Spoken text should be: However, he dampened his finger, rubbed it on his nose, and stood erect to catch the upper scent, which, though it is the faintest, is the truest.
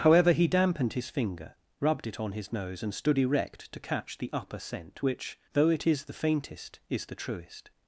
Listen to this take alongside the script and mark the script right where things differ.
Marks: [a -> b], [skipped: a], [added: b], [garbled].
However, he dampened his finger, rubbed it on his nose, and stood erect to catch the upper scent, which, though it is the faintest, is the truest.